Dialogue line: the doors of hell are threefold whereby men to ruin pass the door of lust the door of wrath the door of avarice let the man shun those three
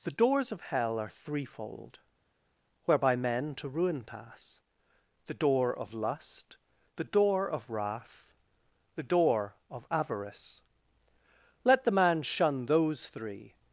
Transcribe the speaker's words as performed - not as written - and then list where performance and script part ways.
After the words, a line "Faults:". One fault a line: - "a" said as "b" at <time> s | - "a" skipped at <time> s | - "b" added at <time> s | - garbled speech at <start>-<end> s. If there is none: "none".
the doors of hell are threefold whereby men to ruin pass the door of lust the door of wrath the door of avarice let the man shun those three
Faults:
none